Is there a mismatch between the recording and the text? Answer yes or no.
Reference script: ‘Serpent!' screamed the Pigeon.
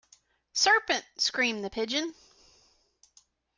no